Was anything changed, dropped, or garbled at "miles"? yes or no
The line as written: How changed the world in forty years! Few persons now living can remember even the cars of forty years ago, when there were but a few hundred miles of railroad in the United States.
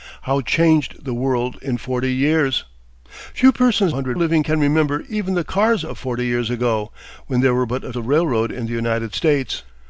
yes